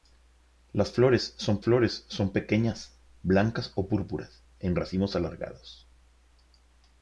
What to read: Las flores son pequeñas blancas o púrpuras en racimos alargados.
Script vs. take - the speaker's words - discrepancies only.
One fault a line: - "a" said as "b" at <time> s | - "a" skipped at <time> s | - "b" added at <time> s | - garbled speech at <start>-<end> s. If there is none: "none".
- "flores son" added at 1.6 s